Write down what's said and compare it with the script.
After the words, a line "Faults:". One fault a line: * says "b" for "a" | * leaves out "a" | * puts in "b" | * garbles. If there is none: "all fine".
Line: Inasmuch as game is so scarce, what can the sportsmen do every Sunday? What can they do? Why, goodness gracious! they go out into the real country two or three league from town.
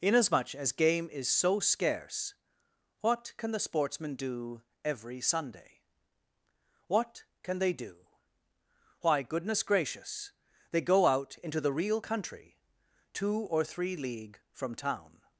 Inasmuch as game is so scarce, what can the sportsmen do every Sunday? What can they do? Why, goodness gracious! they go out into the real country two or three league from town.
Faults:
all fine